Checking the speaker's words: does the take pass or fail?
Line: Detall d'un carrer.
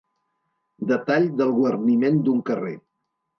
fail